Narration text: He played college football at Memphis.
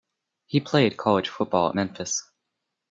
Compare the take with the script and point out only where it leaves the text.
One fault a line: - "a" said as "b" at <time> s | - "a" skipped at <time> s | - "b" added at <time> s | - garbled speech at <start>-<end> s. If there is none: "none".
none